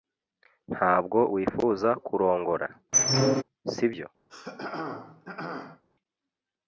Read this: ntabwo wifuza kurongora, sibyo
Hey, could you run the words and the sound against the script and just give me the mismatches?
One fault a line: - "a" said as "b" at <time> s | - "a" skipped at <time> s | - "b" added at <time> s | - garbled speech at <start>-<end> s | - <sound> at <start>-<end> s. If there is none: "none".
- squeak at 2.9-3.4 s
- throat clearing at 4.3-5.8 s